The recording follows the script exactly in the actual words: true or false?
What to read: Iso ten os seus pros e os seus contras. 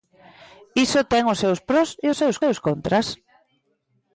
false